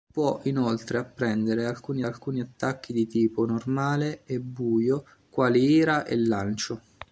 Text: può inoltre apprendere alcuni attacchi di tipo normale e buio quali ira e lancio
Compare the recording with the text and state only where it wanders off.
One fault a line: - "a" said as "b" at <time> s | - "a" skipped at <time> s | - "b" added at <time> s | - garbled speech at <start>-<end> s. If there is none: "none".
- "alcuni" added at 2.0 s